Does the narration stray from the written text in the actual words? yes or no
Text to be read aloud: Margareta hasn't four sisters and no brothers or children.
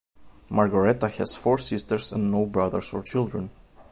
yes